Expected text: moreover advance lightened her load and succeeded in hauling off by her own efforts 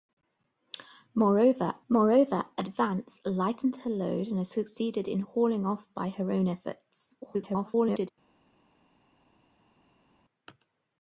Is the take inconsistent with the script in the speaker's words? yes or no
yes